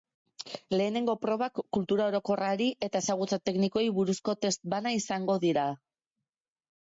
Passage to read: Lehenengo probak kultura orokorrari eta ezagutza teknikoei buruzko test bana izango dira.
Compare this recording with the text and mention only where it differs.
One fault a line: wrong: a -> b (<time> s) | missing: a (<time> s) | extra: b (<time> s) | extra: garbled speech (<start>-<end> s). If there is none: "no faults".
no faults